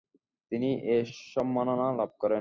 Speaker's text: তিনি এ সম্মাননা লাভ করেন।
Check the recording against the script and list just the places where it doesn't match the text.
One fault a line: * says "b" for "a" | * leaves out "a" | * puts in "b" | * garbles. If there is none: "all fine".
all fine